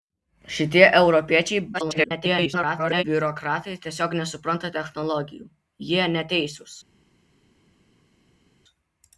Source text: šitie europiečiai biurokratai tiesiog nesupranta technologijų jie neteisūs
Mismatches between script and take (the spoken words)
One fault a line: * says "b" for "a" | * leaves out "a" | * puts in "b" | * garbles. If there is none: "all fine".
* garbles